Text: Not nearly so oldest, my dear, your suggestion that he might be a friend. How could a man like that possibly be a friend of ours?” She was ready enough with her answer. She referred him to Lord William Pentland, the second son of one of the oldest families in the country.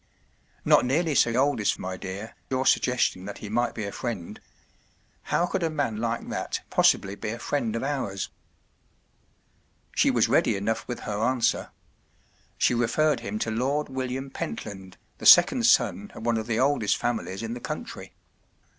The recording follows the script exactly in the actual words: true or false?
true